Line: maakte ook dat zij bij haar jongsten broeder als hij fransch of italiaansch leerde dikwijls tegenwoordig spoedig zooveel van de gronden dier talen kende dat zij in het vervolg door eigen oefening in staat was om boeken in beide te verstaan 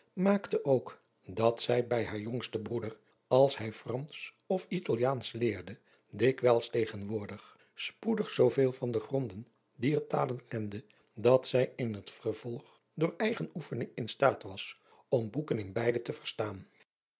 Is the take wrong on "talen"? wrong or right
right